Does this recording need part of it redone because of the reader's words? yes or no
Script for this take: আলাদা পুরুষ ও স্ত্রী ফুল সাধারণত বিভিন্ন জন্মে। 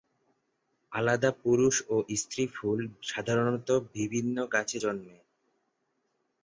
yes